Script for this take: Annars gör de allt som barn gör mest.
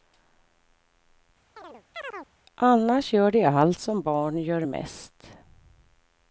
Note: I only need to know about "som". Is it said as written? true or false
true